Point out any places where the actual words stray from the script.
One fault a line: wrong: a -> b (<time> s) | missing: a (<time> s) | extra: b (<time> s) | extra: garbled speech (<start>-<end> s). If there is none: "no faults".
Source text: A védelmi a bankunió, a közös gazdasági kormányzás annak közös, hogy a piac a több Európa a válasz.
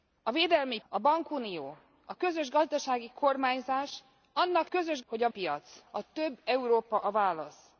no faults